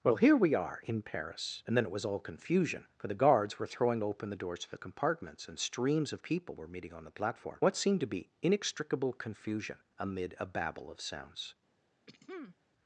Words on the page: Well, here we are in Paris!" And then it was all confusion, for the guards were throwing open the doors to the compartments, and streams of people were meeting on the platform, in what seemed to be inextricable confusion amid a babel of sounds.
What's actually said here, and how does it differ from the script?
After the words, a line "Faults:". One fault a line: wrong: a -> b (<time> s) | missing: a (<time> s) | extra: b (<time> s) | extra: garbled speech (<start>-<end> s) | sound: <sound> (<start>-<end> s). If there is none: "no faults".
Well, here we are in Paris!" And then it was all confusion, for the guards were throwing open the doors to the compartments, and streams of people were meeting on the platform, what seemed to be inextricable confusion amid a babel of sounds.
Faults:
missing: in (7.6 s)
sound: throat clearing (12.1-12.6 s)